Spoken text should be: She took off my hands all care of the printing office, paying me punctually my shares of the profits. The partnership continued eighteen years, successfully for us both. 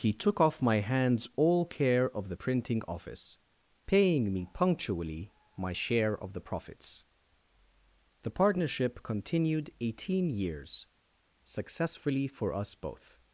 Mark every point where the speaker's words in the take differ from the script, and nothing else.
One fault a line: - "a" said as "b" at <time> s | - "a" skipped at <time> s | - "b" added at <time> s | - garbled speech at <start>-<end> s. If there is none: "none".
- "She" said as "He" at 0.0 s
- "shares" said as "share" at 5.7 s